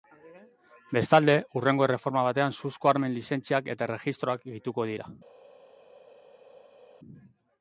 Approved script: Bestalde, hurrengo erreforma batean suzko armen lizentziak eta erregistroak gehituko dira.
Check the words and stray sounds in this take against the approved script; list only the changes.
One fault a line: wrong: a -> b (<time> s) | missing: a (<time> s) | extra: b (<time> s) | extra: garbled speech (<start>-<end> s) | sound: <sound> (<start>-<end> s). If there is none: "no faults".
no faults